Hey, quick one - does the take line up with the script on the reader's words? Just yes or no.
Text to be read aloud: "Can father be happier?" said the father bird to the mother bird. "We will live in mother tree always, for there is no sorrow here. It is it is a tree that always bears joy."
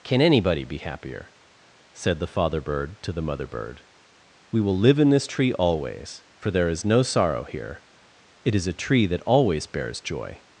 no